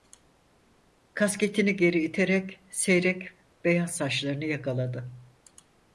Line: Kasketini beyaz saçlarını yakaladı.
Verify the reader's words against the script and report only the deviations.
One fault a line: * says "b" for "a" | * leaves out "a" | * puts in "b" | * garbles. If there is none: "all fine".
* puts in "geri iterek seyrek"